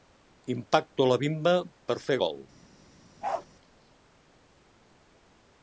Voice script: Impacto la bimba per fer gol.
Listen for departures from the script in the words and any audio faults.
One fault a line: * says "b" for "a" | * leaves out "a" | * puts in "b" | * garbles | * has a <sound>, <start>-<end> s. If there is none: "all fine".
* has a bark, 3.2-3.5 s